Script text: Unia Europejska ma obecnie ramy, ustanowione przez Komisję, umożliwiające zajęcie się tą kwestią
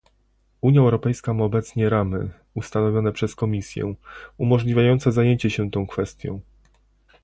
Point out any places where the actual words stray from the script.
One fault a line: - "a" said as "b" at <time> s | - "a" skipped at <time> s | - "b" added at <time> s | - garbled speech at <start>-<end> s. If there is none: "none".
none